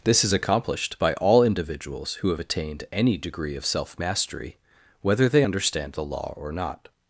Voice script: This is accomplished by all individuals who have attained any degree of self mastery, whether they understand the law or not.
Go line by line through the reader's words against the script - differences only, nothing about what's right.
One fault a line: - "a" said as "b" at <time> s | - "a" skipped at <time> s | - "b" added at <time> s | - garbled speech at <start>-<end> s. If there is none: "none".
none